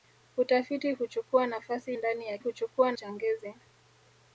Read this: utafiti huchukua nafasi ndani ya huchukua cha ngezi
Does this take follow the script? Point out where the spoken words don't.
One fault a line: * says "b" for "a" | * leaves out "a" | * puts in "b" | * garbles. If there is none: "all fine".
all fine